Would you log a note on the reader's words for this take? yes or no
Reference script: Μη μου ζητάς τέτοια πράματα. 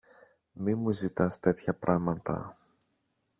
no